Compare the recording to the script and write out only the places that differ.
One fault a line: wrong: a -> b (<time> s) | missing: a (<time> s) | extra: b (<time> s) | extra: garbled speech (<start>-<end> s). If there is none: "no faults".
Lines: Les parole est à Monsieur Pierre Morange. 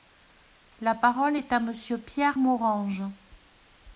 wrong: Les -> La (0.8 s)